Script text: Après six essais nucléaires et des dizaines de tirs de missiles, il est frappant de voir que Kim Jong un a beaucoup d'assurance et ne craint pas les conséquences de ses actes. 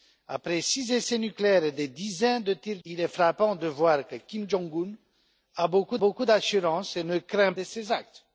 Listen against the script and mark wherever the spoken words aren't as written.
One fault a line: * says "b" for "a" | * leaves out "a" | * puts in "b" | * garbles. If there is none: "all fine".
* leaves out "de missiles"
* puts in "beaucoup"
* leaves out "pas les conséquences"